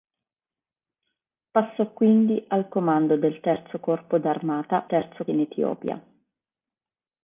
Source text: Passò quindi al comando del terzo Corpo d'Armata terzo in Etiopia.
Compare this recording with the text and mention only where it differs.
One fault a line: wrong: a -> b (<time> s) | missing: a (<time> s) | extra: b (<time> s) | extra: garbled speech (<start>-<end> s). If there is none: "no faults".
no faults